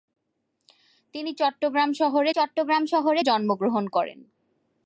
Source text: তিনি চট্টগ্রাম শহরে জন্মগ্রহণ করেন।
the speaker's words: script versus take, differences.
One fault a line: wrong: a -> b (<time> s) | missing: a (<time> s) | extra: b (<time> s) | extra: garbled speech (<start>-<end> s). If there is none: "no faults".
extra: চট্টগ্রাম শহরে (2.3 s)